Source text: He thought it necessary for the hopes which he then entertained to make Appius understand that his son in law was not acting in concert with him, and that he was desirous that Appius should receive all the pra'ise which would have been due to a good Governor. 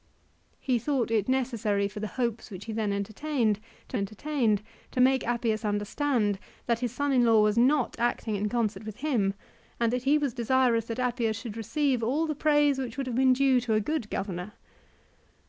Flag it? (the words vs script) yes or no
yes